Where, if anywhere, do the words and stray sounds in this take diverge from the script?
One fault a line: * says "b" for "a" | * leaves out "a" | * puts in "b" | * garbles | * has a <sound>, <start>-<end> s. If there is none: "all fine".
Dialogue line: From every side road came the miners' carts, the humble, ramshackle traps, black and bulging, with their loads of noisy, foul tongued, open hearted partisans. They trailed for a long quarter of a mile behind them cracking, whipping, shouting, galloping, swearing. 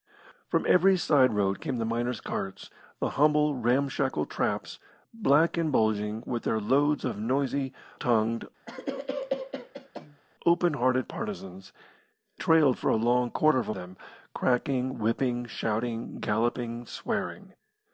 * leaves out "foul"
* has a cough, 8.7-10.2 s
* leaves out "They"
* leaves out "mile behind"